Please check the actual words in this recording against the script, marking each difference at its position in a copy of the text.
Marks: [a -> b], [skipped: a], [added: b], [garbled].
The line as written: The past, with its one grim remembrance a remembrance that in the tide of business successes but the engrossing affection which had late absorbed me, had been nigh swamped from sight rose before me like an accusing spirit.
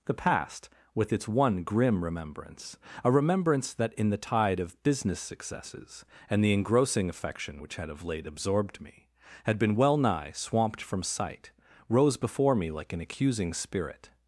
The past, with its one grim remembrance a remembrance that in the tide of business successes [but -> and] the engrossing affection which had [added: of] late absorbed me, had been [added: well] nigh swamped from sight rose before me like an accusing spirit.